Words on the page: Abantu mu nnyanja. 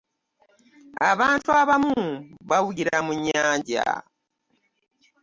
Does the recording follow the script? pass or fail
fail